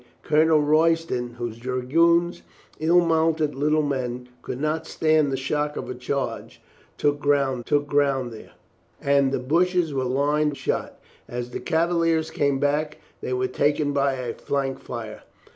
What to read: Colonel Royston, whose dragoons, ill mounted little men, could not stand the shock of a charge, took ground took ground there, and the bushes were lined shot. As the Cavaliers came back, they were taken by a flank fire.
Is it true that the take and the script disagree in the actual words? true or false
false